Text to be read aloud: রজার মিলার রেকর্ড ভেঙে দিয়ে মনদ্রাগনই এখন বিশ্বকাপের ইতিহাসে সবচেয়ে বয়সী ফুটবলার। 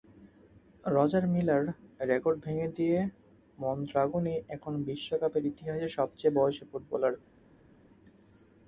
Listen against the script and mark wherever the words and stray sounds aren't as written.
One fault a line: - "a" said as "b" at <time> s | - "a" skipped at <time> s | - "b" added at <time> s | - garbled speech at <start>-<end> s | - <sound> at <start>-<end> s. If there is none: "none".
none